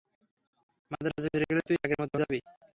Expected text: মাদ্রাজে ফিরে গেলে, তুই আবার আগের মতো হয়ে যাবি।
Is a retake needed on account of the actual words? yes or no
yes